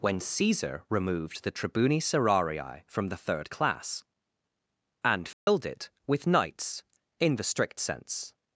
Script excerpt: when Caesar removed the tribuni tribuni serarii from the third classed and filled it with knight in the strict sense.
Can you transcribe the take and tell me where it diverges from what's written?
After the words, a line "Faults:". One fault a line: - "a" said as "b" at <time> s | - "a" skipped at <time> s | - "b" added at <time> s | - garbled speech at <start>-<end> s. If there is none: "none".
when Caesar removed the tribuni serarii from the third class and filled it with knights in the strict sense.
Faults:
- "tribuni" skipped at 2.0 s
- "classed" said as "class" at 3.5 s
- "knight" said as "knights" at 6.3 s